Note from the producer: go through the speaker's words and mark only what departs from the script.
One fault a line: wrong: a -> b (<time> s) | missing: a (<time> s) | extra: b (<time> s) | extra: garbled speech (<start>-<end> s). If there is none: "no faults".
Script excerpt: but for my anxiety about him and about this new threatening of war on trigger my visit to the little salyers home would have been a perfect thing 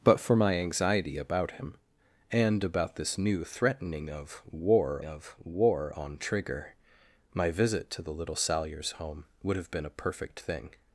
extra: of war (5.0 s)